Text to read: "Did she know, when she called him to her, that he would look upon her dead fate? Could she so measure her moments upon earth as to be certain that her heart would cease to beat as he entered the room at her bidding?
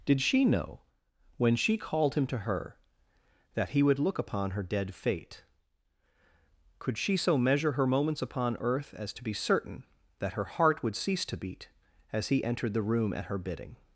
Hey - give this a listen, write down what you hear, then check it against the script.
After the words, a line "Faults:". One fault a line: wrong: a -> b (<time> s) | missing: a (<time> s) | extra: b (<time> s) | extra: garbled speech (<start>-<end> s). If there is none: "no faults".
"Did she know, when she called him to her, that he would look upon her dead fate? Could she so measure her moments upon earth as to be certain that her heart would cease to beat as he entered the room at her bidding?
Faults:
no faults